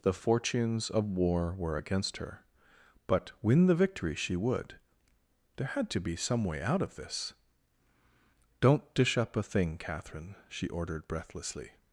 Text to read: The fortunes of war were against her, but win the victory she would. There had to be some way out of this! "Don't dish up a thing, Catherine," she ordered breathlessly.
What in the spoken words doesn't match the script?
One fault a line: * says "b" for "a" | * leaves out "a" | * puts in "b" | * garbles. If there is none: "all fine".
all fine